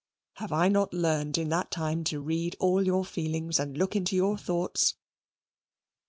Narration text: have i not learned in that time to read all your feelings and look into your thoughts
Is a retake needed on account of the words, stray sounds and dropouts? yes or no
no